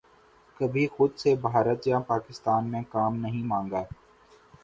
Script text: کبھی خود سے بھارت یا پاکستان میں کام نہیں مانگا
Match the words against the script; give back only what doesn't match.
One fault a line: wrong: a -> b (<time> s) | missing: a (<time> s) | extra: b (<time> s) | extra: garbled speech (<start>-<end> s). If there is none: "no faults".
no faults